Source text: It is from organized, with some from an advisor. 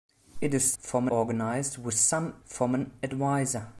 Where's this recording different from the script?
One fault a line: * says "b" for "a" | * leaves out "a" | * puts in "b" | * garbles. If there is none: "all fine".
all fine